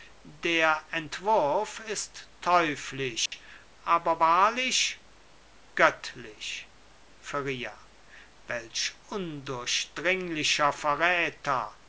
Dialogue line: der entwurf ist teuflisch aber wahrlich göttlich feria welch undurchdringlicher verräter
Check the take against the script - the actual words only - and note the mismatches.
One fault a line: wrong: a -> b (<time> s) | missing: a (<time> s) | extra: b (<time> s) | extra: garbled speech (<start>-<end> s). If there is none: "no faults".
no faults